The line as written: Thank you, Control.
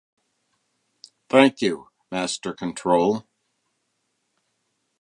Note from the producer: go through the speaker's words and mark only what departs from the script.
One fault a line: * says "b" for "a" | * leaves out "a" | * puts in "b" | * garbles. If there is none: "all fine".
* puts in "Master"